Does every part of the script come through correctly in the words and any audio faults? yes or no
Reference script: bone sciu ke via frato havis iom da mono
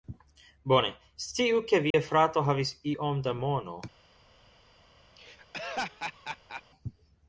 no